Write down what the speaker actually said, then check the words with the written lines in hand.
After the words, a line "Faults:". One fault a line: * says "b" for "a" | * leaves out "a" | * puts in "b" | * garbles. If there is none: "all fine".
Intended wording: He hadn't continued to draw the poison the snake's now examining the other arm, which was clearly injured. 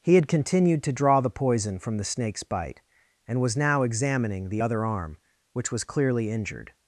He had continued to draw the poison from the snake's bite, and was now examining the other arm, which was clearly injured.
Faults:
* says "had" for "hadn't"
* puts in "from"
* puts in "bite and was"